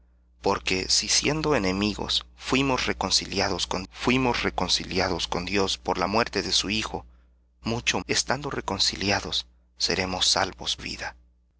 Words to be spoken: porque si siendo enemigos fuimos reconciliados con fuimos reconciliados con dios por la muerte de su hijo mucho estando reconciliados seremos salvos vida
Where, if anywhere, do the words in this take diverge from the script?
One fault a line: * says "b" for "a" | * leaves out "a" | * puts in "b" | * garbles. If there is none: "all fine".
all fine